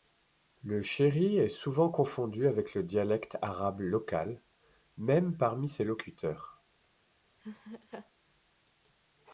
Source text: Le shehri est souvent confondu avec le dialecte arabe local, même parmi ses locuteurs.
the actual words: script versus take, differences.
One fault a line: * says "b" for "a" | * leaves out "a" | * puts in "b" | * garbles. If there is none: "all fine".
all fine